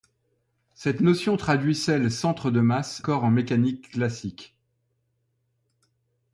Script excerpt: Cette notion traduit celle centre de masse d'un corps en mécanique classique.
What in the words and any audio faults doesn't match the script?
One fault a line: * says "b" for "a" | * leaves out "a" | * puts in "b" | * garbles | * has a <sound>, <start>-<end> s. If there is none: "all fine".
* leaves out "d'un"